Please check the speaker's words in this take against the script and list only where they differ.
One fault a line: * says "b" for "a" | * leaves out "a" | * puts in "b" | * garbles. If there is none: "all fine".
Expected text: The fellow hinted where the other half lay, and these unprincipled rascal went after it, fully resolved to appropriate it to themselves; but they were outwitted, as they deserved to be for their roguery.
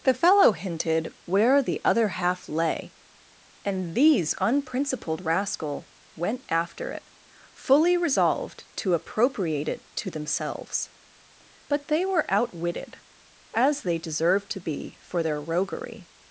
all fine